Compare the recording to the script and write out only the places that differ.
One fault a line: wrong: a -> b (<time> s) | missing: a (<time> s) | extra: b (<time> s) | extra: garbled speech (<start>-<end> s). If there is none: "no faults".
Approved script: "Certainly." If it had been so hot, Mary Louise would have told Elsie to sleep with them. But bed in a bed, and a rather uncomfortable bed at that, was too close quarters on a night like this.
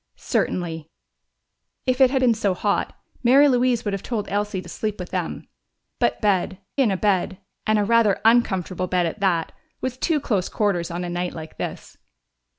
no faults